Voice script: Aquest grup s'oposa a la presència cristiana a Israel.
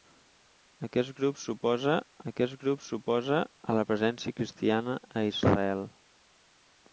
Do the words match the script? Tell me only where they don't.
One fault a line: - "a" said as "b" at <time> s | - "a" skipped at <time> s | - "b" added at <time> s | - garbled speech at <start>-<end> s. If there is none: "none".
- "aquest grup s'oposa" added at 2.3 s